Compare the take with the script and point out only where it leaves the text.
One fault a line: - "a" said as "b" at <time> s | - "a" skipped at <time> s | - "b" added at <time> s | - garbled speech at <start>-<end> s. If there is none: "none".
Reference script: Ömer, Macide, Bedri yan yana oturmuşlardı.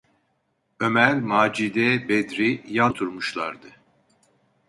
- "yana" skipped at 2.9 s